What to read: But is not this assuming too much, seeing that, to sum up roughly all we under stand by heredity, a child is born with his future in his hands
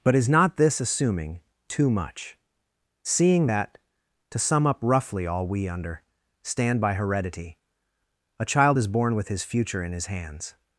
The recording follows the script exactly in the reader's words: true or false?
true